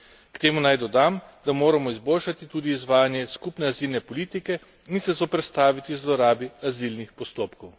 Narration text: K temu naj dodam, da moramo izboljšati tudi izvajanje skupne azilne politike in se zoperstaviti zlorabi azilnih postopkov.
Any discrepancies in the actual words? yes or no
no